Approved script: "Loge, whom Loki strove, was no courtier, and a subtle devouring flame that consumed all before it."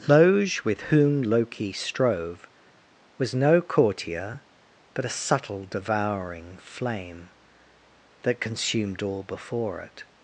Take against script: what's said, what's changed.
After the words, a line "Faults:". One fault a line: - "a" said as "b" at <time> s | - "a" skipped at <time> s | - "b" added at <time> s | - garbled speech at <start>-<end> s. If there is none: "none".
"Loge, with whom Loki strove, was no courtier, but a subtle devouring flame that consumed all before it."
Faults:
- "with" added at 0.6 s
- "and" said as "but" at 4.9 s